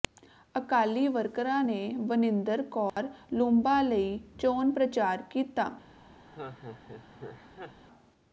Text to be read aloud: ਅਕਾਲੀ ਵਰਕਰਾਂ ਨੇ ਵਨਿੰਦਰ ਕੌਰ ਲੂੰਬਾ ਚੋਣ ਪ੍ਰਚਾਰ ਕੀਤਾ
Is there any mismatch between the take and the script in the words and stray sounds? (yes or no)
yes